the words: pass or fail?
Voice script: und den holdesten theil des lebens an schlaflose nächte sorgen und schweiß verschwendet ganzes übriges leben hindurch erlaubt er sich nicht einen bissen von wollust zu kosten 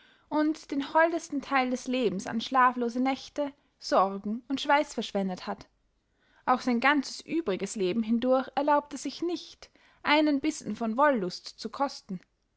fail